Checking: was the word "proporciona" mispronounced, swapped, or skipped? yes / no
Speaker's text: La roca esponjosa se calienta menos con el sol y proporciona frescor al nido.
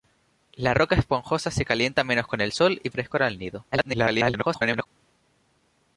yes